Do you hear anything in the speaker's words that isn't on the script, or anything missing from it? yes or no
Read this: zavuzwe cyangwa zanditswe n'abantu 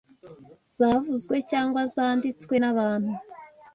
no